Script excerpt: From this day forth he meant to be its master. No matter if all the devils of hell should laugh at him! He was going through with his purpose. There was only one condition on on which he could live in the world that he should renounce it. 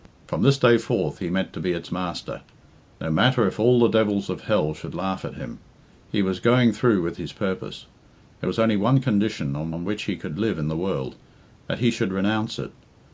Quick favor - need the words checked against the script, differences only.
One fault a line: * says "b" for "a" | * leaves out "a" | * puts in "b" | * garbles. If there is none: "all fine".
all fine